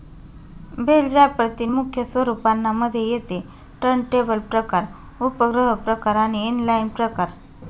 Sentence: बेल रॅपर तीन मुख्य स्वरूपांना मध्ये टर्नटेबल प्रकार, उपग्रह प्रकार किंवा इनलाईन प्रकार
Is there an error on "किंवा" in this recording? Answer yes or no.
yes